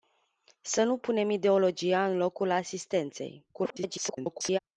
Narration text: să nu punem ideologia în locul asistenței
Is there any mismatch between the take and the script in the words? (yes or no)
yes